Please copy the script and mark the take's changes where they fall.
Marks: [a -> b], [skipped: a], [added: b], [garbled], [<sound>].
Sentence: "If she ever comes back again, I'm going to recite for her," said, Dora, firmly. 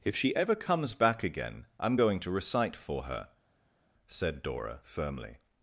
"If she ever comes back again, I'm going to recite for her," said, Dora, firmly.